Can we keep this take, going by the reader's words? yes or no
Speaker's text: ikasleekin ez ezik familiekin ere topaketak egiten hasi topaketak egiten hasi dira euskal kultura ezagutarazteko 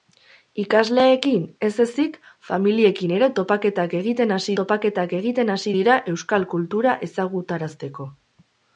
yes